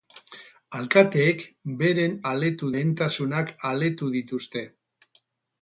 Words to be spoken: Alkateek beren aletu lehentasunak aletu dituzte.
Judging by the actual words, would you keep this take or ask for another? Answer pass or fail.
pass